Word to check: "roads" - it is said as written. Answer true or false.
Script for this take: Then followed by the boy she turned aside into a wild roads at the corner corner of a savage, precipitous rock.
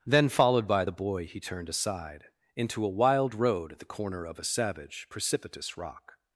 false